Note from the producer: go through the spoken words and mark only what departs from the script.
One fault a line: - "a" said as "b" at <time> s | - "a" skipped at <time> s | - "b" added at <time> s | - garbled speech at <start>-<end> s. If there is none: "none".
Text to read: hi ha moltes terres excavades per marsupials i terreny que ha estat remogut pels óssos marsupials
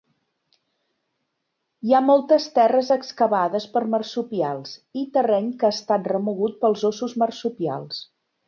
none